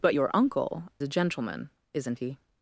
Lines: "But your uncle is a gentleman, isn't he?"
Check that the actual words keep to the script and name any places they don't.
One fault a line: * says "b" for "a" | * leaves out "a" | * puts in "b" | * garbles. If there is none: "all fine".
* leaves out "is"